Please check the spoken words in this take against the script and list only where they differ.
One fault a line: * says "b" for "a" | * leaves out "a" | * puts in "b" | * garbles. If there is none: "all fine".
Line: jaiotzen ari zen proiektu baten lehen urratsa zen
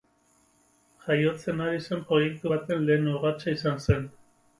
* puts in "izan"